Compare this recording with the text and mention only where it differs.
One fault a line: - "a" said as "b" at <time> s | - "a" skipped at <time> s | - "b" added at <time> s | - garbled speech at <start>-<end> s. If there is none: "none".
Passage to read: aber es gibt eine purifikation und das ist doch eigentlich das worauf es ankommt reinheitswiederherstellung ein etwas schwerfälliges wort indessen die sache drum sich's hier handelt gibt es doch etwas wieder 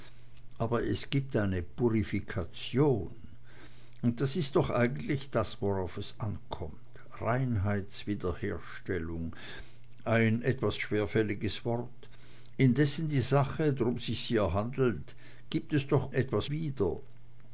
none